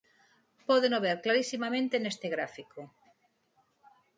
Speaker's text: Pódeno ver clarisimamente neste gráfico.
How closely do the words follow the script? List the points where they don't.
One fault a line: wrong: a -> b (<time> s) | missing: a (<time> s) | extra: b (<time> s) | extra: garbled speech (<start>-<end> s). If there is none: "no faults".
no faults